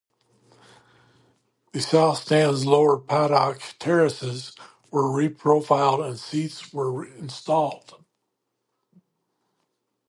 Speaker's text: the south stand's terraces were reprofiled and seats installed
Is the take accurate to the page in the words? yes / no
no